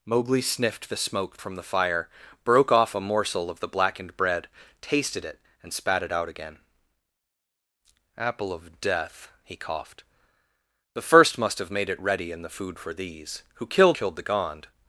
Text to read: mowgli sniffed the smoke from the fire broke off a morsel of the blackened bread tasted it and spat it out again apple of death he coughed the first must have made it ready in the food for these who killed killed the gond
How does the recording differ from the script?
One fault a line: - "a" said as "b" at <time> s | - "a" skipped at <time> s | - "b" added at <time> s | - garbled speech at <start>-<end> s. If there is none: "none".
none